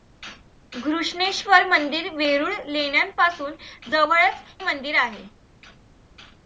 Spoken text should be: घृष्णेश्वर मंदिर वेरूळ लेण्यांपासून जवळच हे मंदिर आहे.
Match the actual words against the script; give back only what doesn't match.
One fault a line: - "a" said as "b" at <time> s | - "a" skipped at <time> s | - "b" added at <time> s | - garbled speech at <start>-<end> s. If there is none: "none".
- "हे" skipped at 4.4 s